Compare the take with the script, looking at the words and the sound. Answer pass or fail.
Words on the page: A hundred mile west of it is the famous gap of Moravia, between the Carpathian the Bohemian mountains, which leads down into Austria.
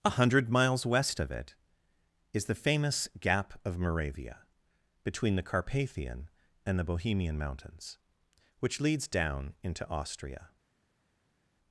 fail